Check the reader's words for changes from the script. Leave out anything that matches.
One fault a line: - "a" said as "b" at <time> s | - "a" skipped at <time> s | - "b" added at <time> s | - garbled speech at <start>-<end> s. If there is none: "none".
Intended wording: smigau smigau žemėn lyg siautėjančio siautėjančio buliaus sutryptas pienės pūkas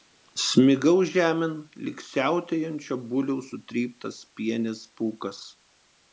- "smigau" skipped at 0.9 s
- "siautėjančio" skipped at 3.0 s